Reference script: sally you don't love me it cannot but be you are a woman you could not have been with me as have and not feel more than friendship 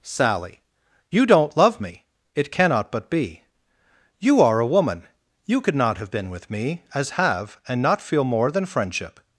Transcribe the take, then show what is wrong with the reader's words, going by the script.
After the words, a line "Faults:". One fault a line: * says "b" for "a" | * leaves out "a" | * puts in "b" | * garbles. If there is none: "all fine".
sally you don't love me it cannot but be you are a woman you could not have been with me as have and not feel more than friendship
Faults:
all fine